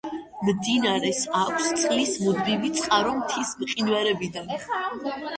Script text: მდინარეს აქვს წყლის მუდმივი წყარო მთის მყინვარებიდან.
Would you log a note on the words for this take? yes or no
no